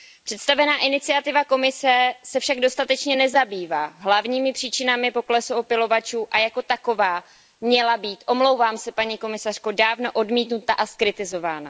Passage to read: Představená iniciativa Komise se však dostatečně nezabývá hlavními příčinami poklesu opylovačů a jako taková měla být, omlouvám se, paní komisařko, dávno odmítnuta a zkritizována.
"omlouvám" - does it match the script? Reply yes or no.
yes